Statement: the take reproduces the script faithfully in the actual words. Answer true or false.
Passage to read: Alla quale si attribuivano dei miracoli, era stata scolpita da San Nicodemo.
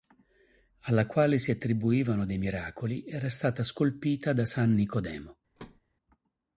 true